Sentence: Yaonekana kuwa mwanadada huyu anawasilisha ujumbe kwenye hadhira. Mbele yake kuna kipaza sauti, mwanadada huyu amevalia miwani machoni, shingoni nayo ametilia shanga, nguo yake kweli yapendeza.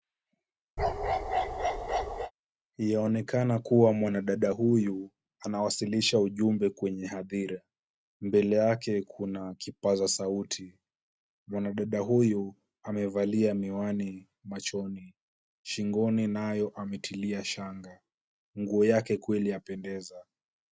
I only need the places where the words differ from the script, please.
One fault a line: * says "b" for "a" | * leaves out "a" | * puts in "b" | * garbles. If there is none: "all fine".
all fine